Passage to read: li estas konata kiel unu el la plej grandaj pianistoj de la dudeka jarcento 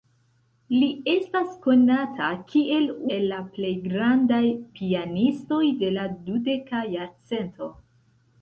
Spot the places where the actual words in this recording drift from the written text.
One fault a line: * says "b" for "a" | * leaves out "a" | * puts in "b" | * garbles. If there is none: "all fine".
* leaves out "unu"